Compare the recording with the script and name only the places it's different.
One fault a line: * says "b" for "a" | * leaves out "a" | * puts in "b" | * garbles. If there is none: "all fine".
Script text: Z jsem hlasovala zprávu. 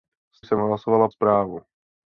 all fine